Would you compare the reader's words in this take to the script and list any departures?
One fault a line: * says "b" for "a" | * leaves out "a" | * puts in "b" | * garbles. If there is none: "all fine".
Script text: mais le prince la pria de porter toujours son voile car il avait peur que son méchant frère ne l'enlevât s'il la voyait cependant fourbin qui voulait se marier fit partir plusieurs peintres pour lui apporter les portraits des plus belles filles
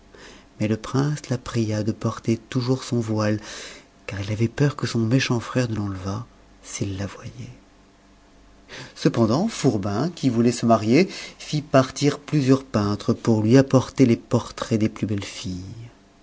all fine